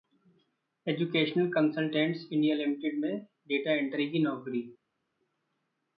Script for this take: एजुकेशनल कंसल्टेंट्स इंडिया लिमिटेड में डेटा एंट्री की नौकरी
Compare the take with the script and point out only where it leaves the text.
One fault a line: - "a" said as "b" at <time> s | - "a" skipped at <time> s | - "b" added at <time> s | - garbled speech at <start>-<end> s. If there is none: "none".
none